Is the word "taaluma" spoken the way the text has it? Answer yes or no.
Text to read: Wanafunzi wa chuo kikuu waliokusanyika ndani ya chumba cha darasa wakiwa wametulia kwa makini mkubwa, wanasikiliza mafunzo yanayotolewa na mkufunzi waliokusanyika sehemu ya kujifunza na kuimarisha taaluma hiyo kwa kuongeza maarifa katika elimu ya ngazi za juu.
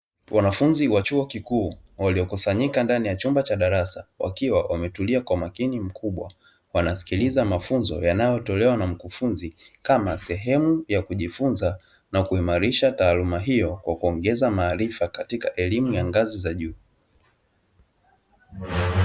yes